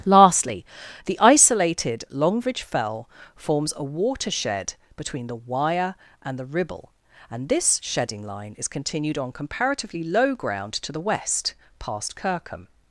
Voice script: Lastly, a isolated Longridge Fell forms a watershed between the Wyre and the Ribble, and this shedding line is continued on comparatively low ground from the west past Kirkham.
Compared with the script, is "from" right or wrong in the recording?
wrong